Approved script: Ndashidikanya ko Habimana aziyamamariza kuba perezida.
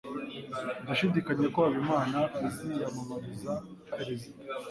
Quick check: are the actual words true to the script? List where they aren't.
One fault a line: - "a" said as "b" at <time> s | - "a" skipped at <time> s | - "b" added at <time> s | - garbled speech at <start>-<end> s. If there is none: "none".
- "kuba" skipped at 3.5 s